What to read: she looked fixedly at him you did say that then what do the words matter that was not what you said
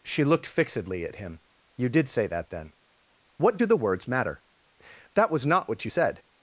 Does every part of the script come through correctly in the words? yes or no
yes